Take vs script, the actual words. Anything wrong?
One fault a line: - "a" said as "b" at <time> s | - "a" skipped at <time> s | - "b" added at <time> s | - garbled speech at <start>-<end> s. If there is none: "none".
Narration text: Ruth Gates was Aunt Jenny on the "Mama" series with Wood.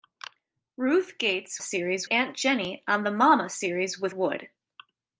- "was" said as "series" at 1.6 s